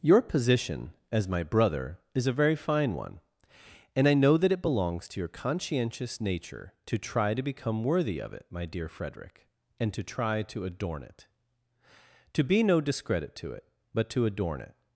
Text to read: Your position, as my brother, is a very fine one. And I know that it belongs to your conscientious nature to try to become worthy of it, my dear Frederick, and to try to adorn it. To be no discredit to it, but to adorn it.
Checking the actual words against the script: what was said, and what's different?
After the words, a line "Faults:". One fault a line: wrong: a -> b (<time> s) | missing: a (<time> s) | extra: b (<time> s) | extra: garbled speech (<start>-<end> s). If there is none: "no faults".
Your position, as my brother, is a very fine one. And I know that it belongs to your conscientious nature to try to become worthy of it, my dear Frederick, and to try to adorn it. To be no discredit to it, but to adorn it.
Faults:
no faults